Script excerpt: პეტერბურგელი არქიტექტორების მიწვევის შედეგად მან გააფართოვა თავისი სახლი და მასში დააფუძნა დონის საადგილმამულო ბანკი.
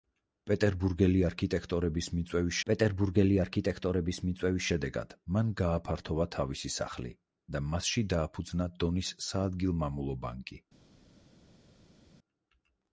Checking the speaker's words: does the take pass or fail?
fail